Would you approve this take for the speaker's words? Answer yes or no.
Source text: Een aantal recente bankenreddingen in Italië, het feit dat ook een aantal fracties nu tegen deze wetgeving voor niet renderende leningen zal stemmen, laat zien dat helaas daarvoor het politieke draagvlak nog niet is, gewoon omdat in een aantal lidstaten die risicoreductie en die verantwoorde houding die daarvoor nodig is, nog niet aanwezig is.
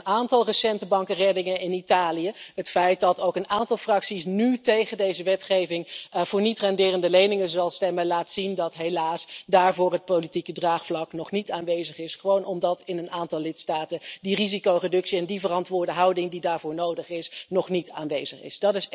no